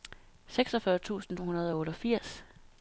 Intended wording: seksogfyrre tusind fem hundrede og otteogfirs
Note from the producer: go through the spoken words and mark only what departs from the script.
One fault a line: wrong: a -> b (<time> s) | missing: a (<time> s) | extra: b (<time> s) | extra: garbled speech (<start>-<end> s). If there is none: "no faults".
missing: fem (1.4 s)